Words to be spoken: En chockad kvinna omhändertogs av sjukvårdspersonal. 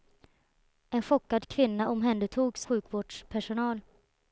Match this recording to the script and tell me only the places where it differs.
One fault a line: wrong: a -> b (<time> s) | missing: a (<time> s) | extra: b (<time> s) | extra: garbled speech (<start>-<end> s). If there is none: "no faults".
missing: av (2.7 s)